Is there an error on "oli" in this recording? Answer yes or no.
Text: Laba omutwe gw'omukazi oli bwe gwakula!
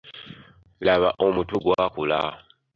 yes